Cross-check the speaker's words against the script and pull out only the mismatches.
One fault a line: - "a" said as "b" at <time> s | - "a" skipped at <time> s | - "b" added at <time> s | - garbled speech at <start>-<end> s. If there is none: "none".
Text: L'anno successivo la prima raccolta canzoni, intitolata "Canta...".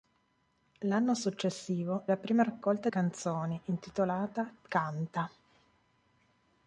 none